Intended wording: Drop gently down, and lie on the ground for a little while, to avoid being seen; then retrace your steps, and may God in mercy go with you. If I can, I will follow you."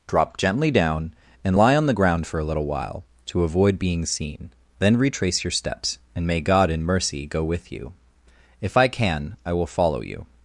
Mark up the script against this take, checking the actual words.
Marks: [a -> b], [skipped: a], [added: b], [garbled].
Drop gently down, and lie on the ground for a little while, to avoid being seen; then retrace your steps, and may God in mercy go with you. If I can, I will follow you."